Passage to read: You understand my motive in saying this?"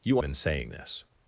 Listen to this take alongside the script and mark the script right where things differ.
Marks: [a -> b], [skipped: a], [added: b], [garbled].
You [skipped: understand my motive] in saying this?"